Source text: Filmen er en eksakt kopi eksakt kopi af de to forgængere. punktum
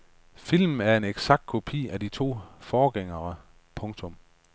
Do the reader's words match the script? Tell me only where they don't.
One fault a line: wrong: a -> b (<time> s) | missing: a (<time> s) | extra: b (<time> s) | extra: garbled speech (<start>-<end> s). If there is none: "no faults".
missing: eksakt kopi (1.9 s)